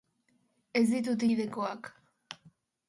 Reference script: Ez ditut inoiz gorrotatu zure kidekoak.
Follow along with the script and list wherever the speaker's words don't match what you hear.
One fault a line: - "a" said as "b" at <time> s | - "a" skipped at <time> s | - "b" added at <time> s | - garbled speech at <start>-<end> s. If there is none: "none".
- "inoiz gorrotatu zure" skipped at 1.2 s